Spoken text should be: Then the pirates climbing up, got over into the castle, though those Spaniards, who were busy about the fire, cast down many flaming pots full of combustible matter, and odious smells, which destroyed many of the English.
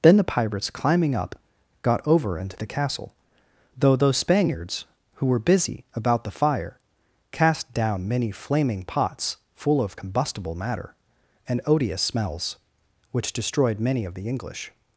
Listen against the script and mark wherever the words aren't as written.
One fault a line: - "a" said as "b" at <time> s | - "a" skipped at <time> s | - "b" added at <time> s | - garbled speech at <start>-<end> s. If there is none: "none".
none